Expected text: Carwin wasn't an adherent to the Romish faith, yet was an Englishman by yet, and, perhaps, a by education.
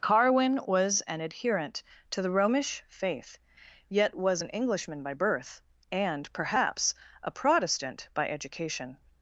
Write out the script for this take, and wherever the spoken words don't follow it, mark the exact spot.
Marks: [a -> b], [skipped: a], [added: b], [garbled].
Carwin [wasn't -> was] an adherent to the Romish faith, yet was an Englishman by [yet, -> birth] and, perhaps, a [added: protestant] by education.